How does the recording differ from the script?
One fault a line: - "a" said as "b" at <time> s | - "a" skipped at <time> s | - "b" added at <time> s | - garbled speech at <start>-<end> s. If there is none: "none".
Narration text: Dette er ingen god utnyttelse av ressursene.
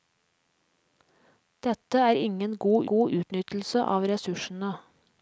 - "god" added at 2.9 s